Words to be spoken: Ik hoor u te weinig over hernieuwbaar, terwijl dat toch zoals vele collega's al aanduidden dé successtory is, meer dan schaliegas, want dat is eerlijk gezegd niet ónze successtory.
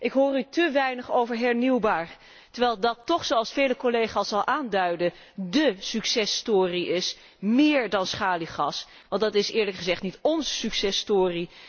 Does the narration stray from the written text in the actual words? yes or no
no